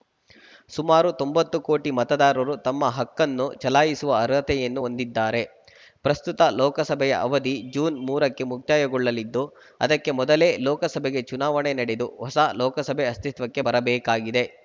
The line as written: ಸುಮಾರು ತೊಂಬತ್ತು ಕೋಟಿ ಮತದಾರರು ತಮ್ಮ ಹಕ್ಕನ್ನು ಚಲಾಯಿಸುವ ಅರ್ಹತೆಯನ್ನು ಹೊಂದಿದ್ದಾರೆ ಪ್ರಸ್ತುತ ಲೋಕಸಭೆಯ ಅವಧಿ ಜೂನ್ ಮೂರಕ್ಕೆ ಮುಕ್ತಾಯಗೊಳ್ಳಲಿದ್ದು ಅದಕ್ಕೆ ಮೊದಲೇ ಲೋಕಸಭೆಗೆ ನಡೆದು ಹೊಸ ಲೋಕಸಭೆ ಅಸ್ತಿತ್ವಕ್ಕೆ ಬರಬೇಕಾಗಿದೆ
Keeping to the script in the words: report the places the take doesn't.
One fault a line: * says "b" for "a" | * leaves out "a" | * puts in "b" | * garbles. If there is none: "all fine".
* puts in "ಚುನಾವಣೆ"